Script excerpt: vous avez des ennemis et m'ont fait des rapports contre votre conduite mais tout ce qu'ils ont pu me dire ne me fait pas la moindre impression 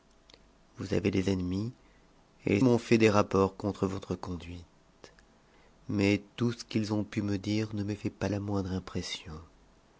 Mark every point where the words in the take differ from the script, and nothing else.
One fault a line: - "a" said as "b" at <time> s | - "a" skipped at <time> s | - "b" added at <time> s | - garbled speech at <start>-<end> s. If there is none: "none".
none